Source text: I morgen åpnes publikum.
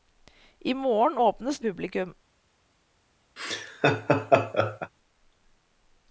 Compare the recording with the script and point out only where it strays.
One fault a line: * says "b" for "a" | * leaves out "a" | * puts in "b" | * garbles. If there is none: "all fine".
all fine